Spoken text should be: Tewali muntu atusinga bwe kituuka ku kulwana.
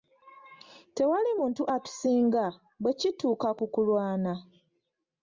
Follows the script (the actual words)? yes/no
yes